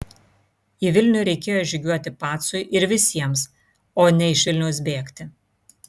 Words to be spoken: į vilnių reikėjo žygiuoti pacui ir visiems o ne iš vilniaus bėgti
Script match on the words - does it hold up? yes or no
yes